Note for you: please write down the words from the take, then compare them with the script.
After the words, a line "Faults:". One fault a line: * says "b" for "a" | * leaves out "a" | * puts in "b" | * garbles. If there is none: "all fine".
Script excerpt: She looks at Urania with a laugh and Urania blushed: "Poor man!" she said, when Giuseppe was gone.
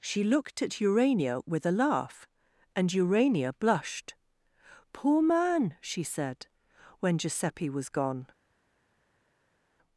She looked at Urania with a laugh and Urania blushed: "Poor man!" she said, when Giuseppe was gone.
Faults:
* says "looked" for "looks"